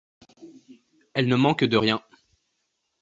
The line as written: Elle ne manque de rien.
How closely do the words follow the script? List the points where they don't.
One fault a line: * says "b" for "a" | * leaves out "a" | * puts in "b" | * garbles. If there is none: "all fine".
all fine